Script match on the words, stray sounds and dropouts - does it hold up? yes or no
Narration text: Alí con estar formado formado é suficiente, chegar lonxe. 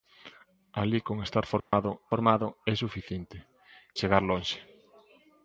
no